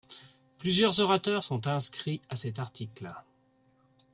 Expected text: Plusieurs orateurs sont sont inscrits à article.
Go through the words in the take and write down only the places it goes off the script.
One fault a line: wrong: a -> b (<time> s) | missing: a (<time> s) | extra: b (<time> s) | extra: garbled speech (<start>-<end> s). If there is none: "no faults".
missing: sont (1.7 s)
extra: cet (2.4 s)